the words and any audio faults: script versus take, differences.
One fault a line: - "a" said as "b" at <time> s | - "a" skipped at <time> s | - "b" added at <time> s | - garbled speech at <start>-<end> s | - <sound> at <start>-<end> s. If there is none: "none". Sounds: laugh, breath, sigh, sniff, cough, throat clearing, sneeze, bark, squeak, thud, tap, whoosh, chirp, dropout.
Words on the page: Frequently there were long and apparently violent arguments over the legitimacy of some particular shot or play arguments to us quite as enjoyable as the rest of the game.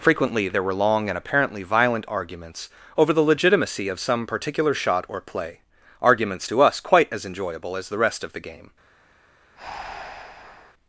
- breath at 9.6-10.7 s